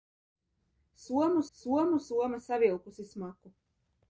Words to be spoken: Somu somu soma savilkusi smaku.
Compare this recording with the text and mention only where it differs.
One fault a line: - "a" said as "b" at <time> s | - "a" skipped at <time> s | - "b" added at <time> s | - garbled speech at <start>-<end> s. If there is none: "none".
none